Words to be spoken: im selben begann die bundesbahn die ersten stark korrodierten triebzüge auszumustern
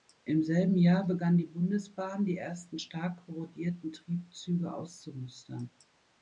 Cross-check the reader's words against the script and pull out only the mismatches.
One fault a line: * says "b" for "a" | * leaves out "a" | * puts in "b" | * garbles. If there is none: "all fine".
* puts in "jahr"